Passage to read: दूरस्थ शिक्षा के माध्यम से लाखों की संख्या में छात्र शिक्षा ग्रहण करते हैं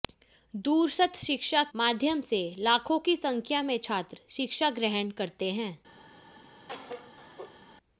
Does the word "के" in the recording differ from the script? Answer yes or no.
yes